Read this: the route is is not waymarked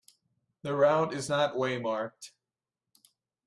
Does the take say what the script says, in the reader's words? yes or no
no